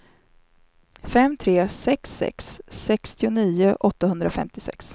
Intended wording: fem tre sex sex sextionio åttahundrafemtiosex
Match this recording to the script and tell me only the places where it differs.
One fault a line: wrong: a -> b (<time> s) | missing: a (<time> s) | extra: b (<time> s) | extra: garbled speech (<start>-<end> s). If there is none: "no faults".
no faults